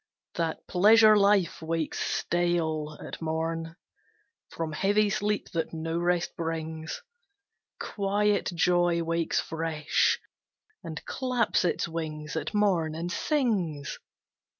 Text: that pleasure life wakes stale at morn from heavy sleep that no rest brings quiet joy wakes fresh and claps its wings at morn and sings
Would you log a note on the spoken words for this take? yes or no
no